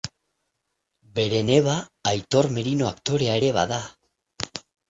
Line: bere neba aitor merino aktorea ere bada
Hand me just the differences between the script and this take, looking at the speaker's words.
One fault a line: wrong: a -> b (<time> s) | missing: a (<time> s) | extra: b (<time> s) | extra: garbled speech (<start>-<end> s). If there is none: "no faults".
no faults